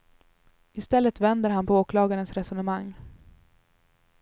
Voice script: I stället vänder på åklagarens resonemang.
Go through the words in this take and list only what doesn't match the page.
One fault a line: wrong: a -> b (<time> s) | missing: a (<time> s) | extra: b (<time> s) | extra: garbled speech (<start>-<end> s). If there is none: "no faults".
extra: han (1.5 s)